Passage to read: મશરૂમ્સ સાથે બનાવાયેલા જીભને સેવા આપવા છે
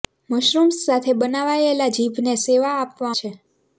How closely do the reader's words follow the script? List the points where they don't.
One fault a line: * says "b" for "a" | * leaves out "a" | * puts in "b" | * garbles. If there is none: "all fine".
all fine